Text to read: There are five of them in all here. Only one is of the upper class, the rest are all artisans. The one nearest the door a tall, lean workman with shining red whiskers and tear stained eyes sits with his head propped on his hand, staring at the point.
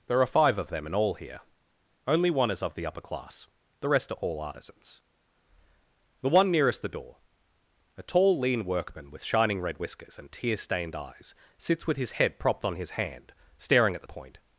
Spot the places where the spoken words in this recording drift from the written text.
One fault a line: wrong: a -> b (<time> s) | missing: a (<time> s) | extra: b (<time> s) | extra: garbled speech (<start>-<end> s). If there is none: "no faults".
no faults